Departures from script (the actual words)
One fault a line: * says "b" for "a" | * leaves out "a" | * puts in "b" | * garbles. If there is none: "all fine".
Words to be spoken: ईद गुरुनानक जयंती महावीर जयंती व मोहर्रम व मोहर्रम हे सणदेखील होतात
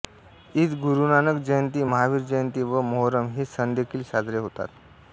* leaves out "व मोहर्रम"
* puts in "साजरे"